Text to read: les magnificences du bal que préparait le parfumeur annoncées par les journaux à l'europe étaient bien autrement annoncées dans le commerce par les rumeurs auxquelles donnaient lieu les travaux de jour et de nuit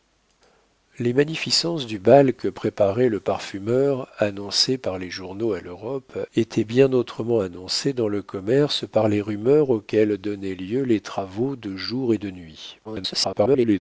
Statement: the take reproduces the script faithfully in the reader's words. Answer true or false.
false